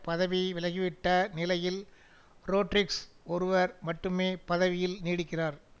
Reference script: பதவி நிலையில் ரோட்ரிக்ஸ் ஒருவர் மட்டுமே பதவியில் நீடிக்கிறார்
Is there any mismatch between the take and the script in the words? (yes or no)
yes